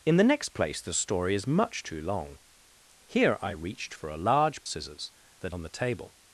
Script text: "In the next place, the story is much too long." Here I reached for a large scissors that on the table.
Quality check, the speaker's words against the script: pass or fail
pass